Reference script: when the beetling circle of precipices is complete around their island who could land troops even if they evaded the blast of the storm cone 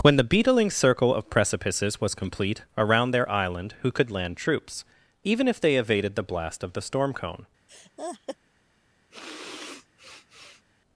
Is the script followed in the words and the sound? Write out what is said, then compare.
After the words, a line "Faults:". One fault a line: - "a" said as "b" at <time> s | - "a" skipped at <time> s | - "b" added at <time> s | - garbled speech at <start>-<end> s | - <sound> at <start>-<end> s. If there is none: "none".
when the beetling circle of precipices was complete around their island who could land troops even if they evaded the blast of the storm cone
Faults:
- "is" said as "was" at 2.0 s
- laugh at 7.7-8.4 s
- sniff at 9.1-10.6 s